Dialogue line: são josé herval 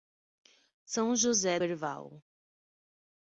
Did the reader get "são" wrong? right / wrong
right